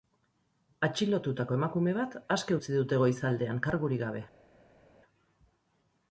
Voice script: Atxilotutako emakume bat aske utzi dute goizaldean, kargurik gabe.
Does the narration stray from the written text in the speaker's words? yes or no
no